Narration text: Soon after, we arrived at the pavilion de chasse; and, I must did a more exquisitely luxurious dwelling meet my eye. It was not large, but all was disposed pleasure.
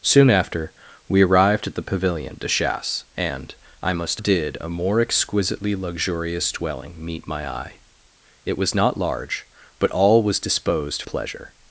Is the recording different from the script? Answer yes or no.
no